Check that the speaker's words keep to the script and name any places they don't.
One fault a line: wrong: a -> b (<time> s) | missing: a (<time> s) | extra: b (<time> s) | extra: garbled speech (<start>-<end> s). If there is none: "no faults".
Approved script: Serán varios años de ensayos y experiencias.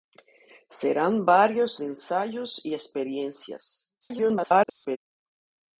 missing: años (1.8 s)
extra: garbled speech (4.0-5.0 s)